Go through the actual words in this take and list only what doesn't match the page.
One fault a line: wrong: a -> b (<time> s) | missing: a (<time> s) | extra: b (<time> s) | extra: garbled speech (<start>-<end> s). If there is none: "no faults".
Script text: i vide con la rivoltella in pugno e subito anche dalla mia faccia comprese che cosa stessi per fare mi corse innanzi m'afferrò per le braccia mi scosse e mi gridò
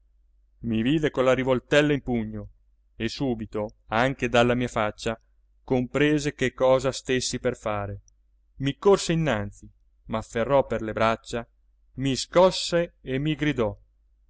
no faults